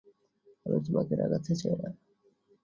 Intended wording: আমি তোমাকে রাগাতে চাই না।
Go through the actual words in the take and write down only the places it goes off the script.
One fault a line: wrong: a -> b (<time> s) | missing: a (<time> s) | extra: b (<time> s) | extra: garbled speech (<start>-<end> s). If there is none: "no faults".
no faults